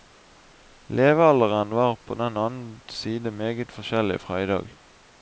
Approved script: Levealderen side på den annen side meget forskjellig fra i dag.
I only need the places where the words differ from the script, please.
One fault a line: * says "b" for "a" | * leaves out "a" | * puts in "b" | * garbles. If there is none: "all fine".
* says "var" for "side"